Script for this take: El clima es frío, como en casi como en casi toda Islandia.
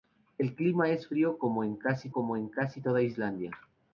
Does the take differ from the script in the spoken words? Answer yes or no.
no